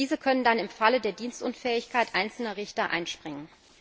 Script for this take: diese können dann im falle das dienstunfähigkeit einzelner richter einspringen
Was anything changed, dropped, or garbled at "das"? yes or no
yes